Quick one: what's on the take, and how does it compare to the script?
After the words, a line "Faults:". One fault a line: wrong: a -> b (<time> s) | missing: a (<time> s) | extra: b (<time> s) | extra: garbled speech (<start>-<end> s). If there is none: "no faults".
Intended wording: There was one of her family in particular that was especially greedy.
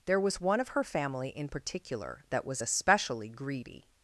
There was one of her family in particular that was especially greedy.
Faults:
no faults